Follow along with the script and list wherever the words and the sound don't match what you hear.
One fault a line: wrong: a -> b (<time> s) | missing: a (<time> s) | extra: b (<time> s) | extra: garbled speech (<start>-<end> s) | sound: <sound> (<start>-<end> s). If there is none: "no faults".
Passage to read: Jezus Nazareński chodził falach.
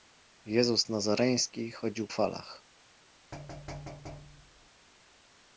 sound: thud (3.3-4.7 s)